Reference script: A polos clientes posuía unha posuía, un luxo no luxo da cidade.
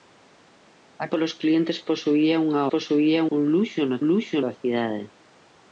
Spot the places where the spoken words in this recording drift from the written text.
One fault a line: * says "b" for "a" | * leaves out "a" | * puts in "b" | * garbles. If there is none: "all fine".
all fine